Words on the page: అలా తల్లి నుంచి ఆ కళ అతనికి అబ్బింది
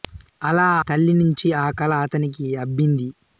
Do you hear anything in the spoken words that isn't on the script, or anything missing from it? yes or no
no